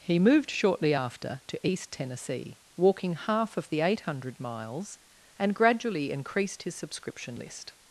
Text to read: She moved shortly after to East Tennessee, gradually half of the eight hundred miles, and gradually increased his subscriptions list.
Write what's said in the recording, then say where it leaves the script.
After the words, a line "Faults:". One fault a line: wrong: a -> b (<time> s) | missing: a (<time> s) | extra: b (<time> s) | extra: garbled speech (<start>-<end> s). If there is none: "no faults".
He moved shortly after to East Tennessee, walking half of the eight hundred miles, and gradually increased his subscription list.
Faults:
wrong: She -> He (0.0 s)
wrong: gradually -> walking (2.8 s)
wrong: subscriptions -> subscription (6.7 s)